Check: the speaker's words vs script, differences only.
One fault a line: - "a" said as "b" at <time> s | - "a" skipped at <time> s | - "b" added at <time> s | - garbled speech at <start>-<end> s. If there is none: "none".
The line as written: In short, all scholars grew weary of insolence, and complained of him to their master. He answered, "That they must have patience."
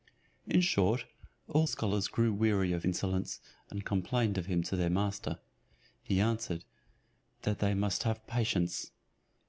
none